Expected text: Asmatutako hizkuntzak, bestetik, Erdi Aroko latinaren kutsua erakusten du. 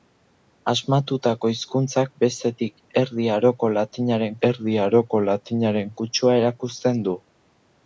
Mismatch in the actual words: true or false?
true